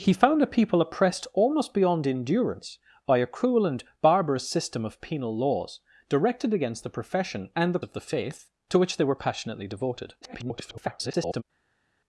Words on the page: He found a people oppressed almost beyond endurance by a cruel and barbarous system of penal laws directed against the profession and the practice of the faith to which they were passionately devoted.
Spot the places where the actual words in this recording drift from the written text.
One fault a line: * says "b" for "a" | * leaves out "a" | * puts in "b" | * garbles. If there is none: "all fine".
* leaves out "practice"
* garbles